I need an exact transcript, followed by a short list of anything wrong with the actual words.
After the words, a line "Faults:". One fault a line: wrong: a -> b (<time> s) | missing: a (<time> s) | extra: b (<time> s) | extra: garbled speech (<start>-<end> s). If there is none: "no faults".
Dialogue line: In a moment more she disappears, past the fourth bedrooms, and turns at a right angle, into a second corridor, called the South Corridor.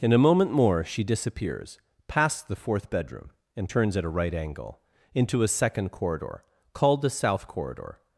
In a moment more she disappears, past the fourth bedroom, and turns at a right angle, into a second corridor, called the South Corridor.
Faults:
wrong: bedrooms -> bedroom (2.9 s)